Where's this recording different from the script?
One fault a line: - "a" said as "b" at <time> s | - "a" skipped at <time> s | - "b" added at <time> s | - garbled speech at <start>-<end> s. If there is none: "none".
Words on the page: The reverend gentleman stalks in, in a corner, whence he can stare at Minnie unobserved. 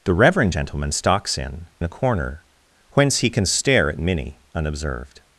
none